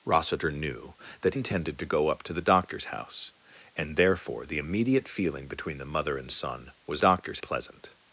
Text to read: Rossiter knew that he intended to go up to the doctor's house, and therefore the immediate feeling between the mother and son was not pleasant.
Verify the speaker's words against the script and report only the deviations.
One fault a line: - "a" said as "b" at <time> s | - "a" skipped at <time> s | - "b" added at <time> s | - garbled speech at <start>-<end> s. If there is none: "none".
- "he" skipped at 1.4 s
- "not" said as "doctor's" at 7.0 s